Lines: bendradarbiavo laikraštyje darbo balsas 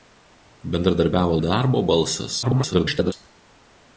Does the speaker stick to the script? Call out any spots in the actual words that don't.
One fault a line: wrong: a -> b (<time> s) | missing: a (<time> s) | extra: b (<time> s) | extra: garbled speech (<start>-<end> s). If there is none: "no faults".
missing: laikraštyje (1.4 s)
extra: garbled speech (2.4-3.1 s)